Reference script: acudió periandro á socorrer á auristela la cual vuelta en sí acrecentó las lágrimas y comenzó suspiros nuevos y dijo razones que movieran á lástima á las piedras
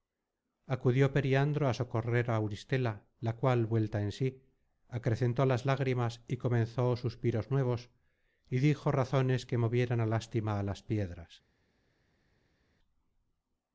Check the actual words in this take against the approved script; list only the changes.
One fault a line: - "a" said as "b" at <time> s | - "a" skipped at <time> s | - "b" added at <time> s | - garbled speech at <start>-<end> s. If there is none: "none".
none